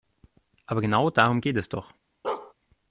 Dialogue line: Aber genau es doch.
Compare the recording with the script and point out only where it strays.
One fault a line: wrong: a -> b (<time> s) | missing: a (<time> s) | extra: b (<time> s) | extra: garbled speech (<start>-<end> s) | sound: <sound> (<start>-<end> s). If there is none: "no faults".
extra: darum geht (1.1 s)
sound: bark (2.2-2.5 s)